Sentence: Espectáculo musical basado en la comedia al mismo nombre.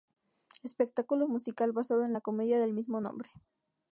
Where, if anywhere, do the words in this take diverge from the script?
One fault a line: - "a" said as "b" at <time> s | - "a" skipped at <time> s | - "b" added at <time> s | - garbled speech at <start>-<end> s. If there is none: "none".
- "al" said as "del" at 2.6 s